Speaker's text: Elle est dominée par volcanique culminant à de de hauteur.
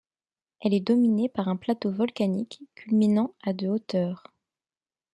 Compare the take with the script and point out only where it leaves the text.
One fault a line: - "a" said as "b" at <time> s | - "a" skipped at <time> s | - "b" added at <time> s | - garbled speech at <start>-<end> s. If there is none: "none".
- "un plateau" added at 1.5 s
- "de" skipped at 3.7 s